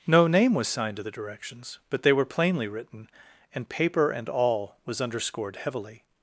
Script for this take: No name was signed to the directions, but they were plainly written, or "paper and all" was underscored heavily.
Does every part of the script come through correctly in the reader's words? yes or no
no